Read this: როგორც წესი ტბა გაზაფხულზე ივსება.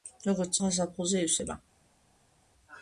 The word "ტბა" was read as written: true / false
false